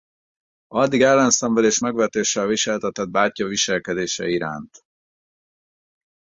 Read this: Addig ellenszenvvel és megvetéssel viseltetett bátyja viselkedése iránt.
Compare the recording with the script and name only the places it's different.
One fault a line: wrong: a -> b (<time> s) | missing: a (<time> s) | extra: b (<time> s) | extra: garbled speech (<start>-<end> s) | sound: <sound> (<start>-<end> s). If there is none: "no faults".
no faults